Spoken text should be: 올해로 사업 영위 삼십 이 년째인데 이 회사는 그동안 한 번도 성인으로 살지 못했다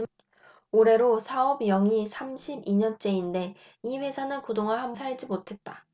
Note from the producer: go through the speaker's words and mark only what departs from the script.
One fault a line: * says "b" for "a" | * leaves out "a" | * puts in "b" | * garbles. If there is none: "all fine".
* leaves out "번도 성인으로"